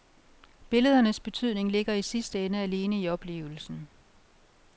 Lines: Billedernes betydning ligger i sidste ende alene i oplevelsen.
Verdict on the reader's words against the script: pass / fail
pass